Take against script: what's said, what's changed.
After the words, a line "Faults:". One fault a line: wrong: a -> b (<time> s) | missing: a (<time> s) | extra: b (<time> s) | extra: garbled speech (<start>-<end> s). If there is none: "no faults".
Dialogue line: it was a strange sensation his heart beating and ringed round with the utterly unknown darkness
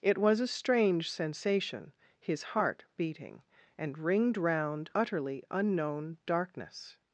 it was a strange sensation his heart beating and ringed round utterly unknown darkness
Faults:
missing: with the (4.9 s)